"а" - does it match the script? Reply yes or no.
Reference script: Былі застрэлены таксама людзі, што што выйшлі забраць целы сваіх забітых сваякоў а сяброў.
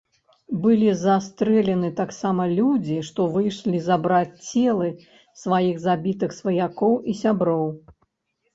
no